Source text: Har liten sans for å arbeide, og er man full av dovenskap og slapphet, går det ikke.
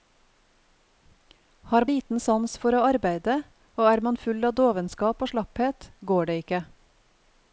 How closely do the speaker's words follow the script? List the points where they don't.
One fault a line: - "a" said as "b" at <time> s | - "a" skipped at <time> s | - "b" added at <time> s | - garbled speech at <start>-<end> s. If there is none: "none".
none